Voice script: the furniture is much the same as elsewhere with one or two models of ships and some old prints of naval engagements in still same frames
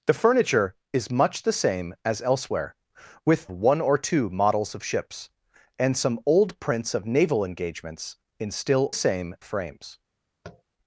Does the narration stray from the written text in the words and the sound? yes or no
yes